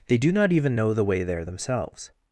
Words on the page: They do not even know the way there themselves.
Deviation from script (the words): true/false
false